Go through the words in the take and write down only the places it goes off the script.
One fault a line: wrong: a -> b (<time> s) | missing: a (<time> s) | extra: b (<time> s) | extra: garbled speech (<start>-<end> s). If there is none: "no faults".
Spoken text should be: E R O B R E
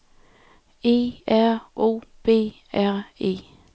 no faults